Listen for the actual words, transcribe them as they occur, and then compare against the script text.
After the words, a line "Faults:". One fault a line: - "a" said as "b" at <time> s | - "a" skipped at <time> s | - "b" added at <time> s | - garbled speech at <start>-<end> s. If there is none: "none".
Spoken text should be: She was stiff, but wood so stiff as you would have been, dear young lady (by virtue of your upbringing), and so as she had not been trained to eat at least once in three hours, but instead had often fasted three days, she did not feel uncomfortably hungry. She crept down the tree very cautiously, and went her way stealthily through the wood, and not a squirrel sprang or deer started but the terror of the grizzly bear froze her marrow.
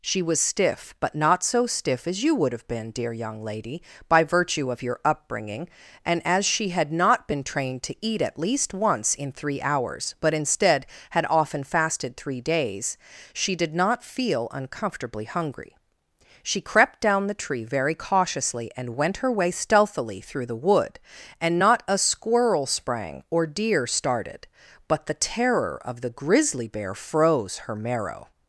She was stiff, but not so stiff as you would have been, dear young lady (by virtue of your upbringing), and as she had not been trained to eat at least once in three hours, but instead had often fasted three days, she did not feel uncomfortably hungry. She crept down the tree very cautiously, and went her way stealthily through the wood, and not a squirrel sprang or deer started but the terror of the grizzly bear froze her marrow.
Faults:
- "wood" said as "not" at 1.1 s
- "so" skipped at 6.2 s